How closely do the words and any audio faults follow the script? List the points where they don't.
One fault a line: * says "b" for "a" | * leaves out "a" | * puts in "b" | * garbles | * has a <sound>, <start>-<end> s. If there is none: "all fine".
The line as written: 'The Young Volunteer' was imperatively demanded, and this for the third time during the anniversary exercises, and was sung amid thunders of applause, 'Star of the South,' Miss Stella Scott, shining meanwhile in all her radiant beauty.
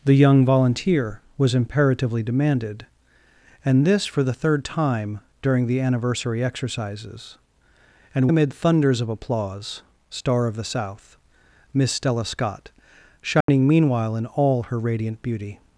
* leaves out "was sung"
* has a dropout, 13.4-13.5 s